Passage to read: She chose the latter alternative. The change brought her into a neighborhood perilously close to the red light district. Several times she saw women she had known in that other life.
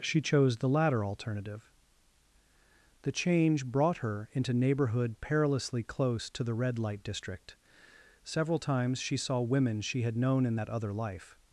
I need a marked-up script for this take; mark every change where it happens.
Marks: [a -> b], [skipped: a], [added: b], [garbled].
She chose the latter alternative. The change brought her into [skipped: a] neighborhood perilously close to the red light district. Several times she saw women she had known in that other life.